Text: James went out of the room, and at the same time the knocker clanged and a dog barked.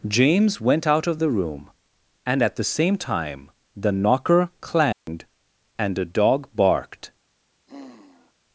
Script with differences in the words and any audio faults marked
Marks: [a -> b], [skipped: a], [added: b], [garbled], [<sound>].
James went out of the room, and at the same time the knocker clanged [dropout] and a dog barked. [sigh]